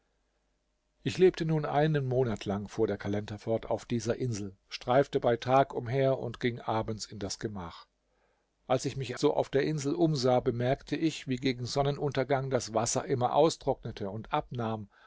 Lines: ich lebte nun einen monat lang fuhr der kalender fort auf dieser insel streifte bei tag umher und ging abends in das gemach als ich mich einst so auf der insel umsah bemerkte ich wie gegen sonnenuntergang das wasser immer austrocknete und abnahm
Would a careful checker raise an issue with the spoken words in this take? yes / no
yes